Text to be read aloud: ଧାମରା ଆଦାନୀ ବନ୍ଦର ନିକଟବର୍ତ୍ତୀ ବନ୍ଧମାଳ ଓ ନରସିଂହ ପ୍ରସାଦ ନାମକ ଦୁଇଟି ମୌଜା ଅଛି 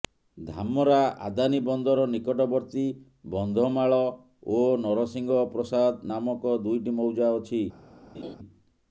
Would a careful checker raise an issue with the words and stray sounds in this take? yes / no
yes